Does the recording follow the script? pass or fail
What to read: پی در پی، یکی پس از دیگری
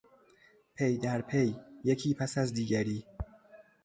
pass